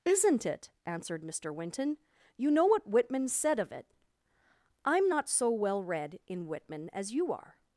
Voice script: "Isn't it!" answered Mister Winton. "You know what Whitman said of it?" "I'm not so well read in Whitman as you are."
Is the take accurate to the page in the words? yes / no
yes